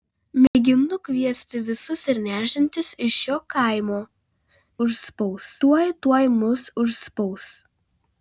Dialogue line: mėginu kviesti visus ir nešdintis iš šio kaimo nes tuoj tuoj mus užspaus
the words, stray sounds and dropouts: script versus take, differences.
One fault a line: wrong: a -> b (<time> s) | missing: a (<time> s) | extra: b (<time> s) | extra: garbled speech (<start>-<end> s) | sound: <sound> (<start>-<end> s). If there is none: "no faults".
sound: dropout (0.5-0.5 s)
wrong: nes -> užspaus (4.9 s)